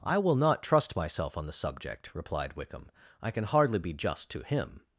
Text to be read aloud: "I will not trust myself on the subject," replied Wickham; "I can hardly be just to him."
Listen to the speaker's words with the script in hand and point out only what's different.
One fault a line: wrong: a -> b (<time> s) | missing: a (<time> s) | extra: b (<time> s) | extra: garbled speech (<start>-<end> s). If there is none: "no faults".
no faults